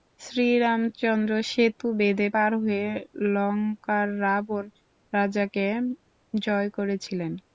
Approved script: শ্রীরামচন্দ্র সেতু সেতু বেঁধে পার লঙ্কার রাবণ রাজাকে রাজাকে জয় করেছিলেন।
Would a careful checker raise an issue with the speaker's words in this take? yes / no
yes